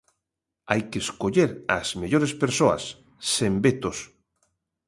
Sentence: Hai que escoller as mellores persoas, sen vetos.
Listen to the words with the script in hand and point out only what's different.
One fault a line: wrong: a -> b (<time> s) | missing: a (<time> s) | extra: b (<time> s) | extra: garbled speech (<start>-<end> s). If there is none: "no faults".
no faults